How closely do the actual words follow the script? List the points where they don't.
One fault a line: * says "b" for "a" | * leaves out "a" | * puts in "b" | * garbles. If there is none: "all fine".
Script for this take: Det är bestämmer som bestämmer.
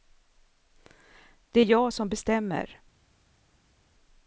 * says "jag" for "bestämmer"